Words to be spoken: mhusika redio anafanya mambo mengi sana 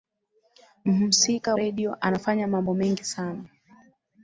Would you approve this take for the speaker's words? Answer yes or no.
yes